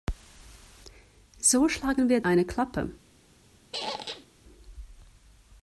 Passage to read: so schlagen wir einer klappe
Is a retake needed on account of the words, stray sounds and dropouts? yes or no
yes